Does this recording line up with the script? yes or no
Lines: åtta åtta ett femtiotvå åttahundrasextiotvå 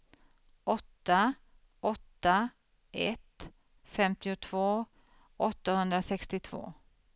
yes